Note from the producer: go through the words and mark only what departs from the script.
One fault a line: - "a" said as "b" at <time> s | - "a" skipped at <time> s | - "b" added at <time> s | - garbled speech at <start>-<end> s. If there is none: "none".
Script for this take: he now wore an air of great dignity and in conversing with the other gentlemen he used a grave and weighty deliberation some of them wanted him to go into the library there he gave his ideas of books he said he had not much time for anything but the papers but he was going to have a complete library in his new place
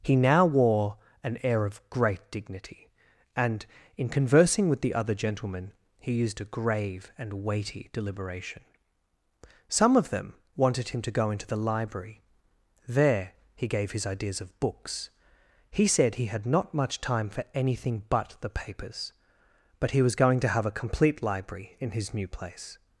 none